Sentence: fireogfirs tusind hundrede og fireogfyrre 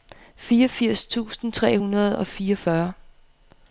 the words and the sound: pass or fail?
fail